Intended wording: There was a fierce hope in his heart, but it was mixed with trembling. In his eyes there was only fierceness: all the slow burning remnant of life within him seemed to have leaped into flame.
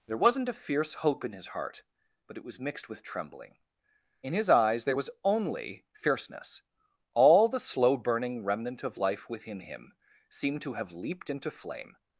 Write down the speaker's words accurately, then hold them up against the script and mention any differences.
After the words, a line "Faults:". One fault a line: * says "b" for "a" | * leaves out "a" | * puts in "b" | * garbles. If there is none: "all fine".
There wasn't a fierce hope in his heart, but it was mixed with trembling. In his eyes there was only fierceness: all the slow burning remnant of life within him seemed to have leaped into flame.
Faults:
* says "wasn't" for "was"